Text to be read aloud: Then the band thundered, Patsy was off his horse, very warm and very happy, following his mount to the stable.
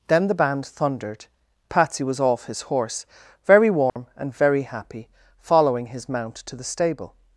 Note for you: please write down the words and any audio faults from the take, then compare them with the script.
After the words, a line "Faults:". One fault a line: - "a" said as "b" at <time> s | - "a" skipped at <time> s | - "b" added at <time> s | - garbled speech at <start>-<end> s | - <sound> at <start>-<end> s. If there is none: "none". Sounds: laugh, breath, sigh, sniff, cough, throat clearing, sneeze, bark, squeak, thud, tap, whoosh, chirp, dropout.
Then the band thundered, Patsy was off his horse, very warm and very happy, following his mount to the stable.
Faults:
- dropout at 3.9-4.0 s